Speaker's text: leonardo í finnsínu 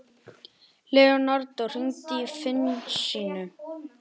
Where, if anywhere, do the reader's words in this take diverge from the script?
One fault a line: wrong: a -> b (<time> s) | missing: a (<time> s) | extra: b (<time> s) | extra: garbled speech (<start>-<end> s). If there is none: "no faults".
extra: hringdu (1.7 s)